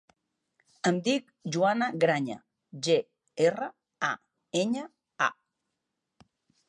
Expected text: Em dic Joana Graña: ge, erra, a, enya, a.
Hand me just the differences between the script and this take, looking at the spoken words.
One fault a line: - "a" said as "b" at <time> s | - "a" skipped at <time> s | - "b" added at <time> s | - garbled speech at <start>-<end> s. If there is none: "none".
none